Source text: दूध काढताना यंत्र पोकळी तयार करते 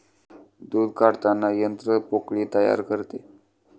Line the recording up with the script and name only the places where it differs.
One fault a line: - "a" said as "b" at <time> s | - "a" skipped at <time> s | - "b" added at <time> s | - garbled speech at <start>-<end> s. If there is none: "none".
none